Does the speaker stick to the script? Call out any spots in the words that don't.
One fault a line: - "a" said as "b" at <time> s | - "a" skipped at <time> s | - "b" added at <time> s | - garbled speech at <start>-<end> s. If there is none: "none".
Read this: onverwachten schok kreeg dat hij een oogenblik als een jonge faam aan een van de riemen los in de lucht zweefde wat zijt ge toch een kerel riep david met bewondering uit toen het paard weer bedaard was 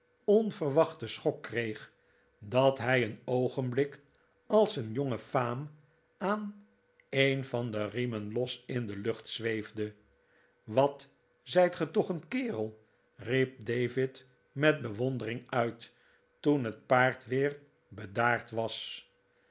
none